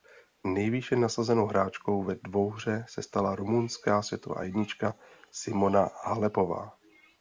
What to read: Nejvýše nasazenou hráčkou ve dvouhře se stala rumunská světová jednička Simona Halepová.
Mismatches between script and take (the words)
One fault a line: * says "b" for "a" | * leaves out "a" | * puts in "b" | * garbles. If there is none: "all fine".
all fine